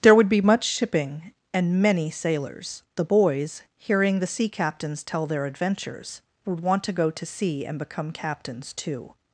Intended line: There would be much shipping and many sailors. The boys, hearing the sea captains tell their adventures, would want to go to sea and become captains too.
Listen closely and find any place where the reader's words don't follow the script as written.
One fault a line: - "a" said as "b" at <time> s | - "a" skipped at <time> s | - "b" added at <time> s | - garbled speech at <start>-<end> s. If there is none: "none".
none